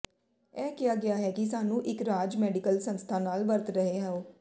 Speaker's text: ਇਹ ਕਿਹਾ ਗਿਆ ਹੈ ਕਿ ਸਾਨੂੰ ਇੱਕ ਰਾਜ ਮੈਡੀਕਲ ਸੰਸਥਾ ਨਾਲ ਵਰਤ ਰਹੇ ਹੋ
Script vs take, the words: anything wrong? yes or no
no